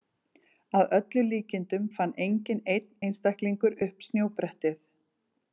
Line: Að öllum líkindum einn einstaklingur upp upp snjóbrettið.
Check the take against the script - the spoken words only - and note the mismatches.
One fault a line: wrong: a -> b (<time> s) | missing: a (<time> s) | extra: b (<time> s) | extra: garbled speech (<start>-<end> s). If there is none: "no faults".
extra: fann enginn (2.0 s)
missing: upp (4.1 s)